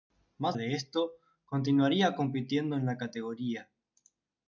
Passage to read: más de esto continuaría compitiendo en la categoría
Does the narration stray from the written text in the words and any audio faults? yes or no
no